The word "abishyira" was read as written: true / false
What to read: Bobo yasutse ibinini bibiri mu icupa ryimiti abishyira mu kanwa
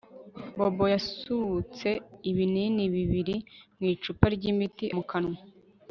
false